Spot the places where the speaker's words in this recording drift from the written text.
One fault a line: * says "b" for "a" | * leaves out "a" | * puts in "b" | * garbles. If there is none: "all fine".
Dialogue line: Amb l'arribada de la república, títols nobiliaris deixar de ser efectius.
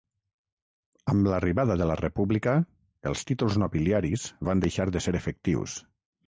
* puts in "els"
* puts in "van"